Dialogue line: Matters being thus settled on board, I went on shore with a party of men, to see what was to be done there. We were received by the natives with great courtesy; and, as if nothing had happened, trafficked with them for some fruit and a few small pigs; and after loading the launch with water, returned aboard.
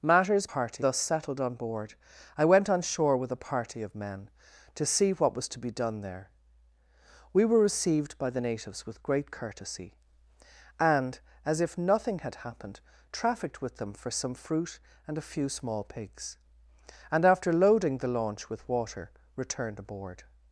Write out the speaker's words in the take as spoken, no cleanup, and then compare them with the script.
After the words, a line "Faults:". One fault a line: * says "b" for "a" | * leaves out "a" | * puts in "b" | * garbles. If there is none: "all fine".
Matters party thus settled on board, I went on shore with a party of men, to see what was to be done there. We were received by the natives with great courtesy; and, as if nothing had happened, trafficked with them for some fruit and a few small pigs; and after loading the launch with water, returned aboard.
Faults:
* says "party" for "being"